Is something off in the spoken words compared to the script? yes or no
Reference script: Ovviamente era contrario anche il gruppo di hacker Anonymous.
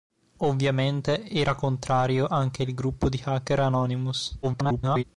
yes